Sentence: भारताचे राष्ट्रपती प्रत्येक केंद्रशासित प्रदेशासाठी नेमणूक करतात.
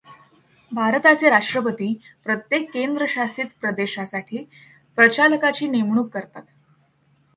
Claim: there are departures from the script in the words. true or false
true